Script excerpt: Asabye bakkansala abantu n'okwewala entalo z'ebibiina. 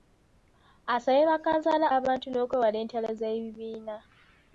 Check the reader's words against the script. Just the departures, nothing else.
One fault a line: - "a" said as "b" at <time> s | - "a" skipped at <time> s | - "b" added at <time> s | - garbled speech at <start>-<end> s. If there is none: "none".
none